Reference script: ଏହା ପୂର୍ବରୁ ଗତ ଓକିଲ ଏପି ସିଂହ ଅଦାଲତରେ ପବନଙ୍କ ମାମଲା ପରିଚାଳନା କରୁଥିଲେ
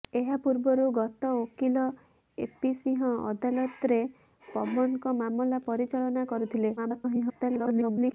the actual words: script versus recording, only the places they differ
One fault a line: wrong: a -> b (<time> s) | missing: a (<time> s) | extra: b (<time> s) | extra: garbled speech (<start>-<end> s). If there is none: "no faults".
extra: garbled speech (6.8-8.1 s)